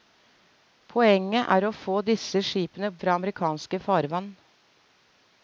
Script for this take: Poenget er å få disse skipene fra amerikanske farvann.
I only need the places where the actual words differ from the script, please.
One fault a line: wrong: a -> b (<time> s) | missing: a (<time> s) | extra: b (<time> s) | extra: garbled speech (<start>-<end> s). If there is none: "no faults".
no faults